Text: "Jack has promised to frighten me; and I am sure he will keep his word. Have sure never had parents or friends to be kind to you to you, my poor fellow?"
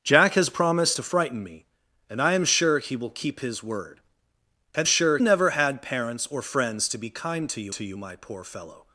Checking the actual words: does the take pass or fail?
pass